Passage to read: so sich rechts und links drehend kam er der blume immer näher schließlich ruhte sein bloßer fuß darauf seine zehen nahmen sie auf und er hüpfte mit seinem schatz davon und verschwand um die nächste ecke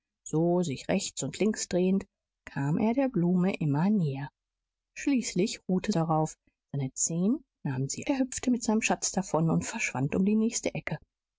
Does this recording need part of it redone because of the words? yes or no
yes